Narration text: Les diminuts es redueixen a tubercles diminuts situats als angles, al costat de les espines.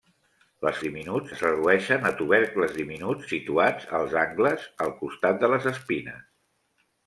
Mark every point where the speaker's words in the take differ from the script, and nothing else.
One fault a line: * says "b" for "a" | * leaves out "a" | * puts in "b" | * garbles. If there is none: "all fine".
all fine